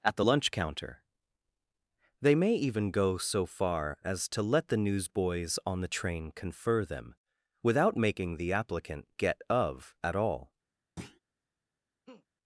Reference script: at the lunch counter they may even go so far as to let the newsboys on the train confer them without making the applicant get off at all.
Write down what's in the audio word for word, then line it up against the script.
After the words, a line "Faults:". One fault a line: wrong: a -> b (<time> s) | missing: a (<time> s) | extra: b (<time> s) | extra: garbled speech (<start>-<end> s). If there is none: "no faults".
at the lunch counter they may even go so far as to let the newsboys on the train confer them without making the applicant get of at all.
Faults:
wrong: off -> of (9.5 s)